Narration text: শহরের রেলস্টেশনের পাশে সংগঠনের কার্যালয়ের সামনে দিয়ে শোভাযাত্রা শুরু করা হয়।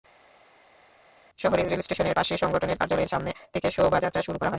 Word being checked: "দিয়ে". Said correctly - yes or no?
no